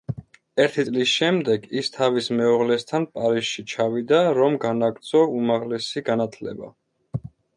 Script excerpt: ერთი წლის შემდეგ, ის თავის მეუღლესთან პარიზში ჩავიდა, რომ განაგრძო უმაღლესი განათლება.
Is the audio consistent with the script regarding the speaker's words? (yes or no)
yes